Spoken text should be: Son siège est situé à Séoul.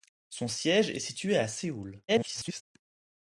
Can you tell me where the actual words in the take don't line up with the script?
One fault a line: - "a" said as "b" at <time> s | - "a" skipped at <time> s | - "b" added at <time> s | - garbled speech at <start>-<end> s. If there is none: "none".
- garbled speech at 2.1-2.6 s